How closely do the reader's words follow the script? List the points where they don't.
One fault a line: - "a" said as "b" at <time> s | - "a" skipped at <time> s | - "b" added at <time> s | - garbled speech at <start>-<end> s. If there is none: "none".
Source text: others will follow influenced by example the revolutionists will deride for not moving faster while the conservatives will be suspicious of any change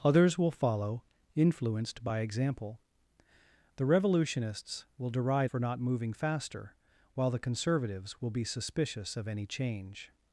none